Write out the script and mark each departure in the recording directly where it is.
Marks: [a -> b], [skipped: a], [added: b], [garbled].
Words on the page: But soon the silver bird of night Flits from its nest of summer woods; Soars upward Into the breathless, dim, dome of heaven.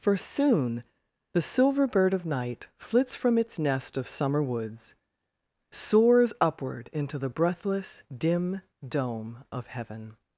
[But -> For] soon the silver bird of night Flits from its nest of summer woods; Soars upward Into the breathless, dim, dome of heaven.